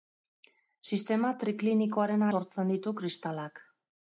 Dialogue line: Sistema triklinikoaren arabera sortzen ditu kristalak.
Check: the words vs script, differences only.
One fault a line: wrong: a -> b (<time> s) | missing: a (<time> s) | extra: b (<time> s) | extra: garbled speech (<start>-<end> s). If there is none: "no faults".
missing: arabera (2.2 s)